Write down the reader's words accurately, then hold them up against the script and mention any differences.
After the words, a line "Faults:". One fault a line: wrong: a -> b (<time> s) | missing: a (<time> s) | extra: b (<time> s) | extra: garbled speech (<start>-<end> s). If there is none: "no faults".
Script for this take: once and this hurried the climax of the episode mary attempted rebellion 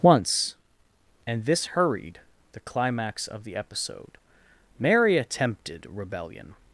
once and this hurried the climax of the episode mary attempted rebellion
Faults:
no faults